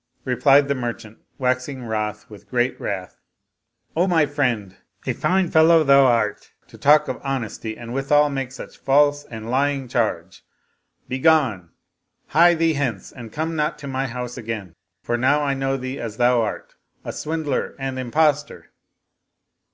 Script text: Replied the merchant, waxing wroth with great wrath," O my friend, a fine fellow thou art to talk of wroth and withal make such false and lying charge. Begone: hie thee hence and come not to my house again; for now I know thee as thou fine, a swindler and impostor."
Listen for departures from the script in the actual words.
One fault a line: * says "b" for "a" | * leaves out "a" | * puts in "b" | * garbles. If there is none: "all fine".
* says "honesty" for "wroth"
* says "art" for "fine"